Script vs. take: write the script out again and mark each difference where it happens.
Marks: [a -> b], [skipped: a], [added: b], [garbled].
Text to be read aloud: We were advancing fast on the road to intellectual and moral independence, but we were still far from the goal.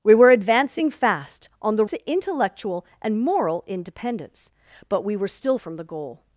We were advancing fast on the [skipped: road] to intellectual and moral independence, but we were still [skipped: far] from the goal.